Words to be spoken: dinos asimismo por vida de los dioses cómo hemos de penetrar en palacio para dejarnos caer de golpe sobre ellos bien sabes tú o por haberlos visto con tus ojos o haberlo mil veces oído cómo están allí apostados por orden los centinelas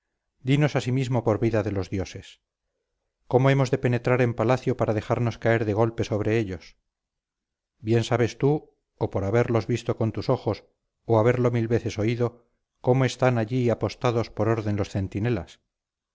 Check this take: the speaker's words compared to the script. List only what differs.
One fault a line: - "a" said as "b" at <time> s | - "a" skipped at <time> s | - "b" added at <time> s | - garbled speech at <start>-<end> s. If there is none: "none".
none